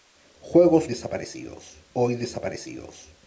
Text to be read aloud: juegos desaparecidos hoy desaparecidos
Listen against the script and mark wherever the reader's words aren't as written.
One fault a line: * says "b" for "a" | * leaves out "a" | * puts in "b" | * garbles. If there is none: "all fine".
all fine